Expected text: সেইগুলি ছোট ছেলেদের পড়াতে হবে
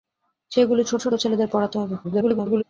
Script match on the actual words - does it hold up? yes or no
no